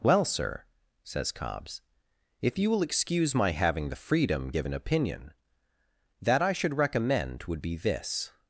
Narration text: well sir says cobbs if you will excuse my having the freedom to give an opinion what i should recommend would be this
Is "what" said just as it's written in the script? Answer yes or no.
no